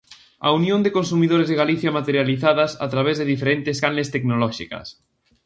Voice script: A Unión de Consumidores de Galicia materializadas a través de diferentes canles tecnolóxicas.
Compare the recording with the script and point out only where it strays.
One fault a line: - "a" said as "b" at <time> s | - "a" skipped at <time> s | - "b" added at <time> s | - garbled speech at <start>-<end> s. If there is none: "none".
none